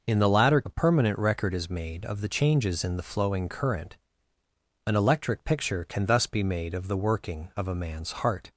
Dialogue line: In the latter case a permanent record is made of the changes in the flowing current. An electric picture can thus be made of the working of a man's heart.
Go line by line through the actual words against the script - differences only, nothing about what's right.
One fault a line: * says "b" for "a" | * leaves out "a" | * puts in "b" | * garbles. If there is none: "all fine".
* leaves out "case"